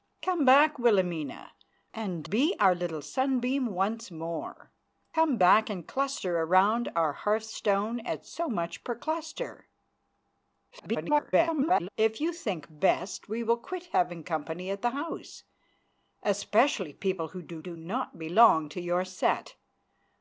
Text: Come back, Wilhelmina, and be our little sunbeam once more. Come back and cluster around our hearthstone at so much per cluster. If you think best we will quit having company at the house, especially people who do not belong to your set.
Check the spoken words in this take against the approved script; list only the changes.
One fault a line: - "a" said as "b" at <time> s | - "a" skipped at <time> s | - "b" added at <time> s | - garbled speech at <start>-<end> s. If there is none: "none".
- garbled speech at 10.7-11.9 s
- "do" added at 17.6 s